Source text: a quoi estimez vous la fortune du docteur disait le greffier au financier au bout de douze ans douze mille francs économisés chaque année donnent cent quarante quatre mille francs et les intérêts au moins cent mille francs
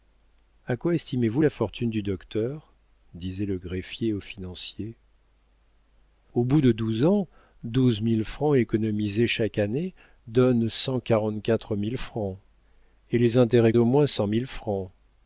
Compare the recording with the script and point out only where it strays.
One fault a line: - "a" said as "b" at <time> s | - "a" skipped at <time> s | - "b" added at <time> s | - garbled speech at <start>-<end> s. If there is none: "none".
none